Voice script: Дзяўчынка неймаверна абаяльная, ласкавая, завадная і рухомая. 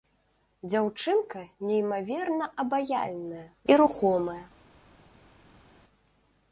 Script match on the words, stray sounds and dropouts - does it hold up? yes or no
no